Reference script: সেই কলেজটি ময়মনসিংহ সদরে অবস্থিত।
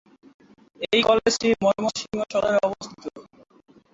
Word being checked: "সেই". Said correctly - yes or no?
no